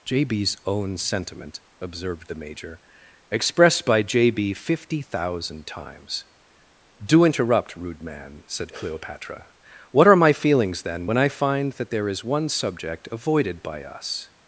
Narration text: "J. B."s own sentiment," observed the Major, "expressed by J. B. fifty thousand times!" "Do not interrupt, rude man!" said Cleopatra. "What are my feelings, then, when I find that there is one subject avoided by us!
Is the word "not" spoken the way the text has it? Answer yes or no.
no